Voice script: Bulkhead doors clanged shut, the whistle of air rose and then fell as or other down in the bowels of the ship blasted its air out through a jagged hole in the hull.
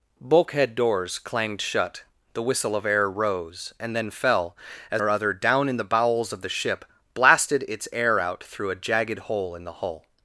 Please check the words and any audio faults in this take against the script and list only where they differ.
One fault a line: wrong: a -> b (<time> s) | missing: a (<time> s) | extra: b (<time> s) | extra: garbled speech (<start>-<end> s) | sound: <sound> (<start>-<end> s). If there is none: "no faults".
no faults